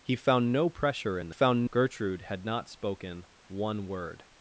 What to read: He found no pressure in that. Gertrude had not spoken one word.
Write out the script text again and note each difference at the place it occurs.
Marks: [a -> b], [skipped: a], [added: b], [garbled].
He found no pressure in [that. -> found] Gertrude had not spoken one word.